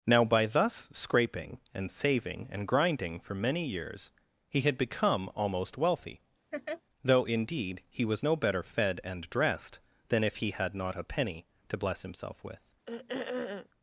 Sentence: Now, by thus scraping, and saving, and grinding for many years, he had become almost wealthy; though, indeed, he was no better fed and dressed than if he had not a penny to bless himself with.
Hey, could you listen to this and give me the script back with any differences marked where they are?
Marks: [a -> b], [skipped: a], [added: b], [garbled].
Now, by thus scraping, and saving, and grinding for many years, he had become almost wealthy; though, indeed, he was no better fed and dressed than if he had not a penny to bless himself with.